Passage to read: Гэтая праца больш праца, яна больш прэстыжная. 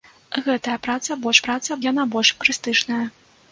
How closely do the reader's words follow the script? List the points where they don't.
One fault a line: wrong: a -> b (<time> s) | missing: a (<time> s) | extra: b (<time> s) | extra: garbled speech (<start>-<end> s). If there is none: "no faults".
no faults